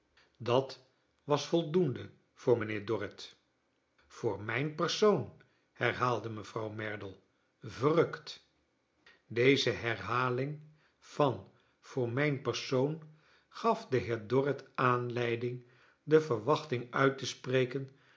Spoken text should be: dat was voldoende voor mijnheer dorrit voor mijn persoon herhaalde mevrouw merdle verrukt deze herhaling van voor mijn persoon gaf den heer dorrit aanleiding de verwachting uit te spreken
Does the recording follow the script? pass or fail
pass